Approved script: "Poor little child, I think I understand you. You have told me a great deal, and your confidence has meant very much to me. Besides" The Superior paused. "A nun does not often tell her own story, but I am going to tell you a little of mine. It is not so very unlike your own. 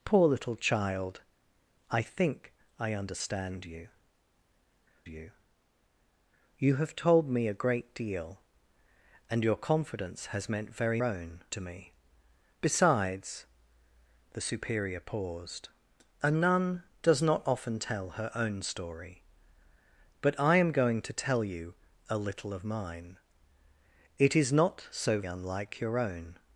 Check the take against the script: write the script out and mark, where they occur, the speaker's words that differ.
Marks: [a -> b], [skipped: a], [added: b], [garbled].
"Poor little child, I think I understand you. You [added: You] have told me a great deal, and your confidence has meant very [much -> own] to me. Besides" The Superior paused. "A nun does not often tell her own story, but I am going to tell you a little of mine. It is not so [skipped: very] unlike your own.